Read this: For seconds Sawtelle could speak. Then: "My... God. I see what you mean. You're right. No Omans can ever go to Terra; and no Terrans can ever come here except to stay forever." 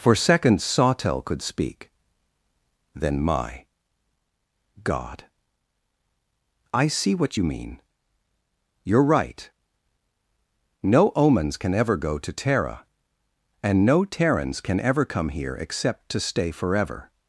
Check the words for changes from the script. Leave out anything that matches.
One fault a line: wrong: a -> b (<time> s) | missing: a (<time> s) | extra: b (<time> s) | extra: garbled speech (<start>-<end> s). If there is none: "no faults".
no faults